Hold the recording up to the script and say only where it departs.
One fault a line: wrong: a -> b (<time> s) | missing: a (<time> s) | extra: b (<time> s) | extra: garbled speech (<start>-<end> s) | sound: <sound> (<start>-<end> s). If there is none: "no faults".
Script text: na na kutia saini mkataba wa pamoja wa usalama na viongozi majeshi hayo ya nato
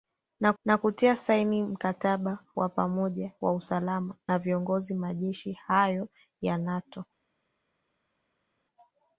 no faults